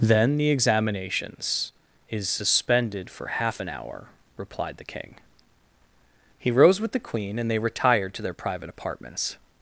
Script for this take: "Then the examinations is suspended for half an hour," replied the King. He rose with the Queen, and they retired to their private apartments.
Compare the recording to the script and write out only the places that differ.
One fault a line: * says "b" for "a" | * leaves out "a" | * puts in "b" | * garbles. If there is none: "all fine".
all fine